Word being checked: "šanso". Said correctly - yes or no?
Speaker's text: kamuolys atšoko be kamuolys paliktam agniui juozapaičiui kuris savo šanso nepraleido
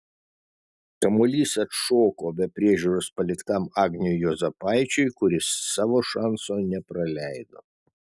yes